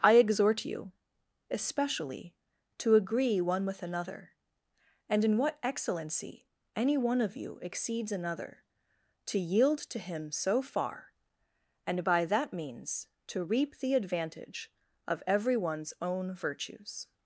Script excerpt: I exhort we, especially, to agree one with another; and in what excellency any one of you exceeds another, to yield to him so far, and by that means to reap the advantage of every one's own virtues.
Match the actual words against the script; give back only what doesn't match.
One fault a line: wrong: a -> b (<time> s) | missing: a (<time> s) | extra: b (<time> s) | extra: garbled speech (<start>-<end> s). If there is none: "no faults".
wrong: we -> you (0.7 s)